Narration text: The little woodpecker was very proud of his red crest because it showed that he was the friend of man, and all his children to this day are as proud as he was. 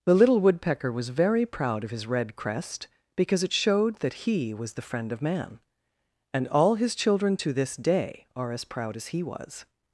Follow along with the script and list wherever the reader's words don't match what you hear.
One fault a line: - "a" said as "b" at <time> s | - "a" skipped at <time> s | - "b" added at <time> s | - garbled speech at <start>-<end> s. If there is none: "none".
none